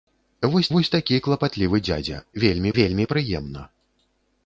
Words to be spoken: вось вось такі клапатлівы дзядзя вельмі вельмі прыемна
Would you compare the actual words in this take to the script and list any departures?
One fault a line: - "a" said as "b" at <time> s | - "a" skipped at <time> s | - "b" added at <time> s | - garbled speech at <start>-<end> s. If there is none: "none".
none